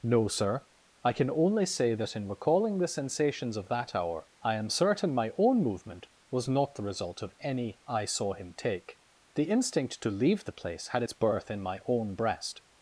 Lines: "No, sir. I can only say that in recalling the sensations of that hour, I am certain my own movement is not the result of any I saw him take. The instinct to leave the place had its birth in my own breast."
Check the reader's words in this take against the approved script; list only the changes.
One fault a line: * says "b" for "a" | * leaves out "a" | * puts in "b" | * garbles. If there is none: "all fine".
* says "was" for "is"